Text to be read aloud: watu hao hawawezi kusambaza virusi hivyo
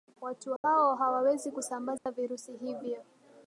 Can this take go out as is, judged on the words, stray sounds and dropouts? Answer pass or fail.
fail